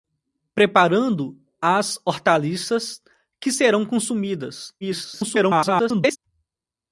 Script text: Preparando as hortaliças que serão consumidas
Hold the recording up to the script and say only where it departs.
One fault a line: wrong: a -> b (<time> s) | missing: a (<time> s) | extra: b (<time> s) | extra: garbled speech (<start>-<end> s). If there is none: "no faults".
extra: garbled speech (4.8-6.2 s)